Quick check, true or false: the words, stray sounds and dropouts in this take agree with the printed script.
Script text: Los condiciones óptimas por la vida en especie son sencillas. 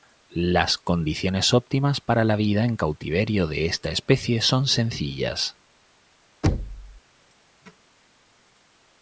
false